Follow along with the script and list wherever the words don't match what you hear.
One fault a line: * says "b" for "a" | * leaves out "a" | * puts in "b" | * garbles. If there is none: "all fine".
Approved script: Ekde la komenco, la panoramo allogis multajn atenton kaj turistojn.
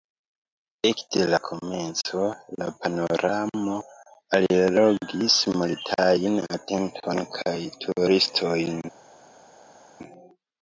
all fine